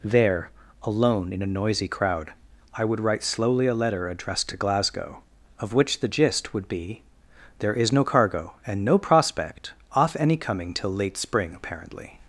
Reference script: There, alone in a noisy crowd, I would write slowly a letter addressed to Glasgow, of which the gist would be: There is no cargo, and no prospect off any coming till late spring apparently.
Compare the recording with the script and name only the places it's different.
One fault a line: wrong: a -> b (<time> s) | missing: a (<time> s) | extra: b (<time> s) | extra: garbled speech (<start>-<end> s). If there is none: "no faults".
no faults